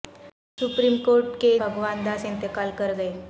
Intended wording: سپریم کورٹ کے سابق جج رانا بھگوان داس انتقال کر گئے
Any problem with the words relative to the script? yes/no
yes